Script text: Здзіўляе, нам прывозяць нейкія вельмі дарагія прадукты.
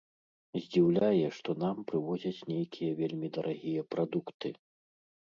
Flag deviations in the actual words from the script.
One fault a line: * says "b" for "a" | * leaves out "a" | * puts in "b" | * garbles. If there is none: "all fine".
* puts in "што"